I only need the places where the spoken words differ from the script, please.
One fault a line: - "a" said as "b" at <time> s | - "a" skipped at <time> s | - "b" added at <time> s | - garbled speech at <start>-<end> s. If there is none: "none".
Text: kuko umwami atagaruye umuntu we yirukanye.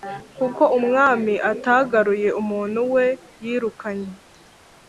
none